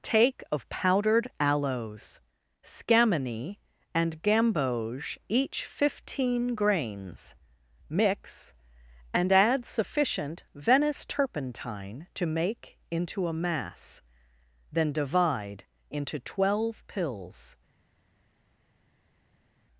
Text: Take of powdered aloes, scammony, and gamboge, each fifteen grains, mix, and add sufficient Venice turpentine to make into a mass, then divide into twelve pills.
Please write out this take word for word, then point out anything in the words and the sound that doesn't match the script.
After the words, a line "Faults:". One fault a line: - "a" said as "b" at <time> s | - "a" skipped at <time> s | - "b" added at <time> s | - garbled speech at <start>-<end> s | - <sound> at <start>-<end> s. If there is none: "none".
Take of powdered aloes, scammony, and gamboge, each fifteen grains, mix, and add sufficient Venice turpentine to make into a mass, then divide into twelve pills.
Faults:
none